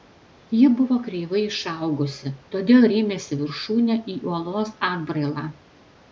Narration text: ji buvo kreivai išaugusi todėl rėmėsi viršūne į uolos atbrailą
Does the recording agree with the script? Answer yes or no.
yes